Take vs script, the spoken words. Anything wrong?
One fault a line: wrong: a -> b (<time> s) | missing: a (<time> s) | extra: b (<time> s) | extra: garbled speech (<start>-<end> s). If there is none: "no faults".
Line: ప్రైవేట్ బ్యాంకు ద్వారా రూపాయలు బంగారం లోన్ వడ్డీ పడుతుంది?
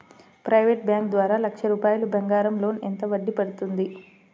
extra: లక్ష (1.4 s)
extra: ఎంత (2.8 s)